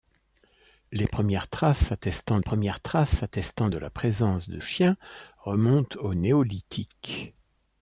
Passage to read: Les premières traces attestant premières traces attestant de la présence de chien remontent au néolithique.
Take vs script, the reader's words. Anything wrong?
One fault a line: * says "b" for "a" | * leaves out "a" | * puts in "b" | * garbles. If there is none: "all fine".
all fine